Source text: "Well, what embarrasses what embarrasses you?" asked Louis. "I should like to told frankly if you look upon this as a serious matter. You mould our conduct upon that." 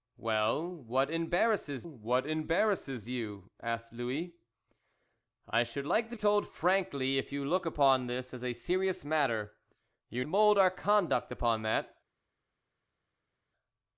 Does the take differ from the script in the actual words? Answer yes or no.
no